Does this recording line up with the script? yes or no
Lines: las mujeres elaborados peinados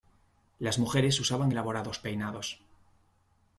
no